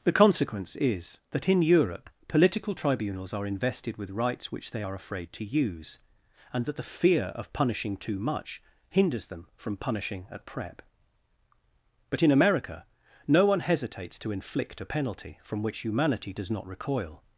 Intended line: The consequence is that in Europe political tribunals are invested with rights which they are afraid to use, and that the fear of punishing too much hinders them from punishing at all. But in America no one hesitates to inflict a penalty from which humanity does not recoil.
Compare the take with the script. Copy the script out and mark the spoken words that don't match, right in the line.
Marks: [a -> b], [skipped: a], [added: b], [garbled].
The consequence is that in Europe political tribunals are invested with rights which they are afraid to use, and that the fear of punishing too much hinders them from punishing at [all. -> prep] But in America no one hesitates to inflict a penalty from which humanity does not recoil.